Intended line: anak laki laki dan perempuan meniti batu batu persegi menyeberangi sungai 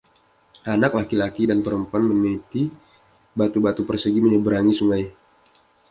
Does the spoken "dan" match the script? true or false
true